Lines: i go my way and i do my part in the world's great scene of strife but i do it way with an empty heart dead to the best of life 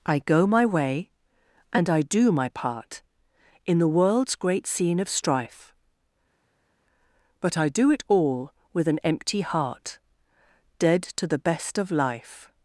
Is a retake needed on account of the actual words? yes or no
yes